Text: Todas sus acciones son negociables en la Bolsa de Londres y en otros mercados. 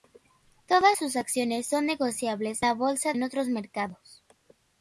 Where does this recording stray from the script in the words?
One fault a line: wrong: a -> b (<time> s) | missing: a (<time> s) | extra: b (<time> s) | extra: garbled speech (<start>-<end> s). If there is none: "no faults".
missing: en (2.6 s)
missing: de Londres y (3.1 s)